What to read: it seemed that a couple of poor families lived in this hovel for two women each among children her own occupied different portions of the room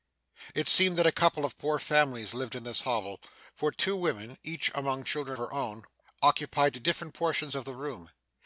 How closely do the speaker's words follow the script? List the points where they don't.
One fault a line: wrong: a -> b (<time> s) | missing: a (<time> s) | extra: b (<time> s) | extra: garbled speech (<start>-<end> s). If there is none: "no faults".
no faults